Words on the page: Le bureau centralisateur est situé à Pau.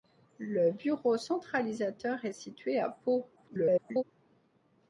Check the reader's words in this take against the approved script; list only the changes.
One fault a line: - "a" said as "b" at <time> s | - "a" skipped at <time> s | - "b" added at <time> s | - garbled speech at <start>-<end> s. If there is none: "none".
- garbled speech at 3.4-4.0 s